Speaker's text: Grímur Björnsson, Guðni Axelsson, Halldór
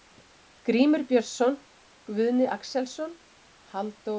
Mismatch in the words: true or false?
false